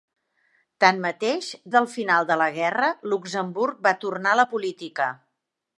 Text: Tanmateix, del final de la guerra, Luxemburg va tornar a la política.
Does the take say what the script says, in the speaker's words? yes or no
yes